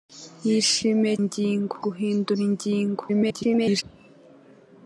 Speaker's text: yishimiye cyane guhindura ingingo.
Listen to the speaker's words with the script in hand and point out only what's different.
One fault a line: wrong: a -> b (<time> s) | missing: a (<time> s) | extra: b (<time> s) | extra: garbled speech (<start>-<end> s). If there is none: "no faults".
wrong: cyane -> ingingo (1.2 s)
extra: garbled speech (3.1-3.8 s)